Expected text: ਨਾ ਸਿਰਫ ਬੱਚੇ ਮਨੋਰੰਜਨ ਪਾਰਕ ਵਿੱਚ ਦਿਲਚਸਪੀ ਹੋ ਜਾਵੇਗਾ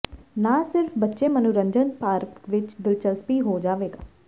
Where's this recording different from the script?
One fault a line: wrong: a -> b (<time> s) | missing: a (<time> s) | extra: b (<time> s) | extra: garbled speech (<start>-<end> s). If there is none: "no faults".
no faults